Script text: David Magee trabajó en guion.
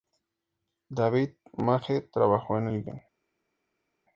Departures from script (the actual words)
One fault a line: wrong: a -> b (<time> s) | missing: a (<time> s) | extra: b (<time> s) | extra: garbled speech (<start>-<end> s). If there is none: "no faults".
extra: el (2.7 s)